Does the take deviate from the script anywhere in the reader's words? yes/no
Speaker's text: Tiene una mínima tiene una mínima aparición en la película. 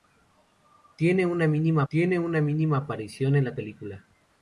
no